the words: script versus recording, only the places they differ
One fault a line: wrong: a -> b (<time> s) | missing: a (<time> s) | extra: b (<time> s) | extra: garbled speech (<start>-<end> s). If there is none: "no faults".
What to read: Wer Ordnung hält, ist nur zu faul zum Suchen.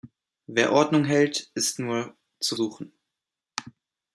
missing: faul zum (2.5 s)